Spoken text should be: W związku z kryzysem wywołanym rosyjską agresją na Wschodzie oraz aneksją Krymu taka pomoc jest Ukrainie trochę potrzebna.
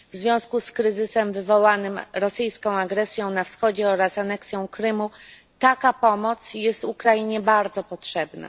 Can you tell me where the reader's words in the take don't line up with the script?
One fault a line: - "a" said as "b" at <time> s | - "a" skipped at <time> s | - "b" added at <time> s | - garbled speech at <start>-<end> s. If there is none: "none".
- "trochę" said as "bardzo" at 7.4 s